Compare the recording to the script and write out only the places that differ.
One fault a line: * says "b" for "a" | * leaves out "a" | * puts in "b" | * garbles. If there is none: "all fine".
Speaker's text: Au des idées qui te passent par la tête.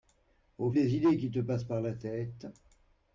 all fine